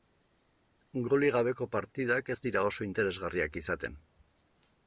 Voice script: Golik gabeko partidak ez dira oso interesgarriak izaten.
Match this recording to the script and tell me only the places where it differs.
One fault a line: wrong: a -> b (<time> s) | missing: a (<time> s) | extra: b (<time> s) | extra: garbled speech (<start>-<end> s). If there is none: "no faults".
no faults